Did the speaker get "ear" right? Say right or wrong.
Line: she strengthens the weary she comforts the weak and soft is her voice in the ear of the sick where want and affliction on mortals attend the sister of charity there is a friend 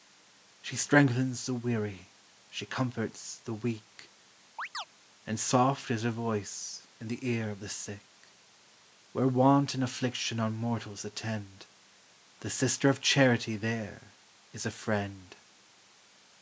right